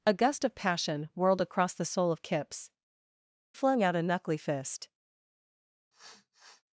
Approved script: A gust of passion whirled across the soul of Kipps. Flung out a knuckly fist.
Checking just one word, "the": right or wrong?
right